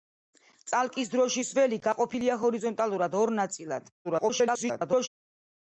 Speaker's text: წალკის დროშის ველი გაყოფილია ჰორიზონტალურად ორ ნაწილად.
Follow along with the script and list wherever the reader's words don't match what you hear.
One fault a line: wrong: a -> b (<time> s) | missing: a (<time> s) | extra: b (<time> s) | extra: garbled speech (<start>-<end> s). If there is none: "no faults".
extra: garbled speech (4.0-5.1 s)